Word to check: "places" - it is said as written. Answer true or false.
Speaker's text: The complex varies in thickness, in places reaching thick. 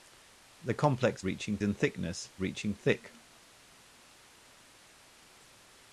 false